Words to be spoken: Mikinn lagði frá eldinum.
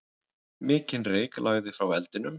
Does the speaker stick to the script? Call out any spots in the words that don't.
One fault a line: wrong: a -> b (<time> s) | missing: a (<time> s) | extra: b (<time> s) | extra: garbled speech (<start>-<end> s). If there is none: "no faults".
extra: reyk (1.1 s)